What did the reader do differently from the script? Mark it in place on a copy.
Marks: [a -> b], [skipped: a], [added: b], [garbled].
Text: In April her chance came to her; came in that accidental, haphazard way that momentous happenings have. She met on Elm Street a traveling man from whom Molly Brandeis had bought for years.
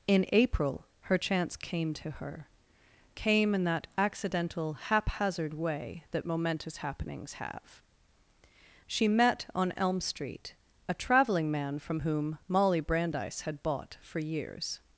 In April her chance came to her; came in that accidental, haphazard way that momentous happenings have. She met on Elm Street a traveling man from whom Molly Brandeis had bought for years.